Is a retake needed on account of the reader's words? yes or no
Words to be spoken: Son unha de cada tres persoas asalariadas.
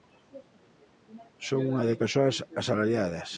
yes